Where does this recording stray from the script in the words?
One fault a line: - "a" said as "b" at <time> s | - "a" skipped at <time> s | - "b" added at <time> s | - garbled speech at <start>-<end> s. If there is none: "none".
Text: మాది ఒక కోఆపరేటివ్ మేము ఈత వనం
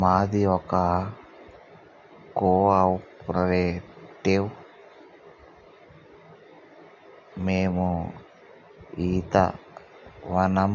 none